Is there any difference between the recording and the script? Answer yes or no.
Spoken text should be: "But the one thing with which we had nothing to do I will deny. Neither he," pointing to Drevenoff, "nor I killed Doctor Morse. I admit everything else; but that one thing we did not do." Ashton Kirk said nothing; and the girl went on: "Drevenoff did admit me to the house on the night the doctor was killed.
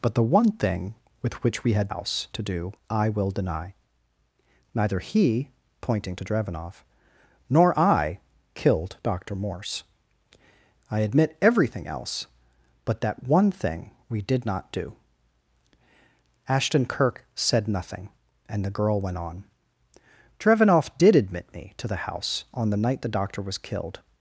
yes